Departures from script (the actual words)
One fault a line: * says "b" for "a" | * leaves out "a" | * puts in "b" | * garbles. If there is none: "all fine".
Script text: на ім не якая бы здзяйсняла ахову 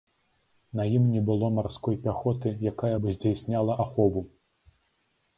* puts in "было марской пяхоты"